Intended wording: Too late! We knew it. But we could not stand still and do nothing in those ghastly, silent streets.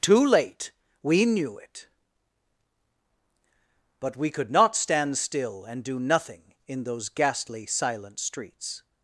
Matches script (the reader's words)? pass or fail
pass